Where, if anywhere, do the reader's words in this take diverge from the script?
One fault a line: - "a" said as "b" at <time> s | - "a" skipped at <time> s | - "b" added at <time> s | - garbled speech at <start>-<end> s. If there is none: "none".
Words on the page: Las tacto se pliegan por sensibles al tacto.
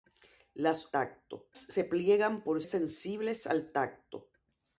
none